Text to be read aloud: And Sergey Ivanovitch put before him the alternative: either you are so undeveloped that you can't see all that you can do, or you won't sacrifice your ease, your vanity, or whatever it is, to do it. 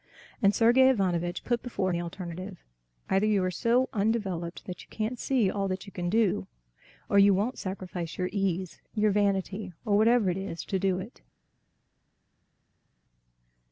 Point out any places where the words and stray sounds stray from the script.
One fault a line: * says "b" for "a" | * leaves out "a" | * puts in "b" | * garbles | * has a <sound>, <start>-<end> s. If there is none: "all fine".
* leaves out "him"